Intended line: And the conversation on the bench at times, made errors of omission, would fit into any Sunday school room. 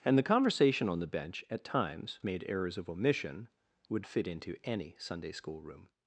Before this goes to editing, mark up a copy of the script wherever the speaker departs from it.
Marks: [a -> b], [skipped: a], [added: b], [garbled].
And the conversation on the bench at times, made errors of omission, would fit into any Sunday school room.